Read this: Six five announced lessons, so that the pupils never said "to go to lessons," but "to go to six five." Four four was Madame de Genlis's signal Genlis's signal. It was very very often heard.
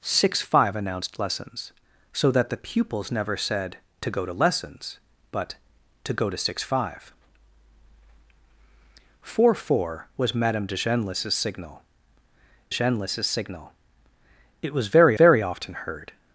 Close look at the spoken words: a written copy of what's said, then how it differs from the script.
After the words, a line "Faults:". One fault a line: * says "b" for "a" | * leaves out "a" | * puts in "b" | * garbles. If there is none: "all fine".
Six five announced lessons, so that the pupils never said "to go to lessons," but "to go to six five." Four four was Madame de Genlis's signal Genlis's signal. It was very very often heard.
Faults:
all fine